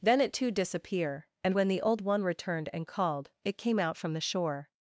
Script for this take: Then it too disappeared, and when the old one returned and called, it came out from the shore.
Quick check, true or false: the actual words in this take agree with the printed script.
false